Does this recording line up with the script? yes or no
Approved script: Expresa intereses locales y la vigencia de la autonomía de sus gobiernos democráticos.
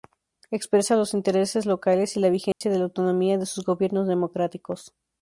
no